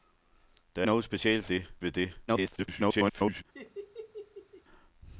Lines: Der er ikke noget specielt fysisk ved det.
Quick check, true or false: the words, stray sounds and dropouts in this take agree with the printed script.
false